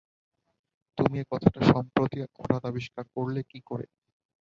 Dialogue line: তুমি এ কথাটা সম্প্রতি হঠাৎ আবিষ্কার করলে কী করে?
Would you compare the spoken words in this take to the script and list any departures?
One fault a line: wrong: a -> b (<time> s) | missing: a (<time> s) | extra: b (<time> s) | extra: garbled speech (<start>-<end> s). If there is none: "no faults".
no faults